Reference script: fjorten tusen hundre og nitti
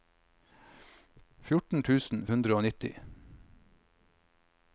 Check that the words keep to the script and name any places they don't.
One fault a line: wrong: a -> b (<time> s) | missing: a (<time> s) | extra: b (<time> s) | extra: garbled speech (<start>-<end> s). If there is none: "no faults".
no faults